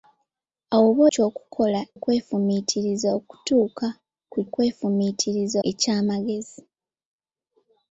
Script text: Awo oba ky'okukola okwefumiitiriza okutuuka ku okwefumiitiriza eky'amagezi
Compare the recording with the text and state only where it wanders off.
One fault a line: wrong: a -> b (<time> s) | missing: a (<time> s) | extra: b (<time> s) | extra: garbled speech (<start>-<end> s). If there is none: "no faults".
no faults